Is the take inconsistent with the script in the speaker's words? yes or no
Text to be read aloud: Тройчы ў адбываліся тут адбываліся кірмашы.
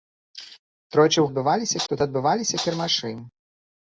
no